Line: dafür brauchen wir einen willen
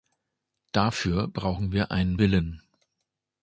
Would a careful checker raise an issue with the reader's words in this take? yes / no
no